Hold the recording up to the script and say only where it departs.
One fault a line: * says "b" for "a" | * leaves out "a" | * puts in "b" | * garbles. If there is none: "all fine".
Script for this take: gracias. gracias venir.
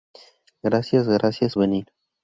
all fine